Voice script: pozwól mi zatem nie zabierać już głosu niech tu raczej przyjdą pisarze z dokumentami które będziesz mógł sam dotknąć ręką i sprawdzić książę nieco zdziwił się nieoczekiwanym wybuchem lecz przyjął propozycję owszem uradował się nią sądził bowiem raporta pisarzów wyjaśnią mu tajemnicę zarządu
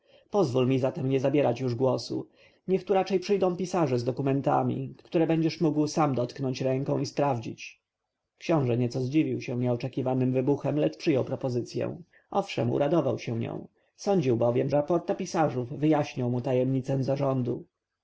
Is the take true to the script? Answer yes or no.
yes